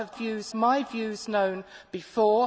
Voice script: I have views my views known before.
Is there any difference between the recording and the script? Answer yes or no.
no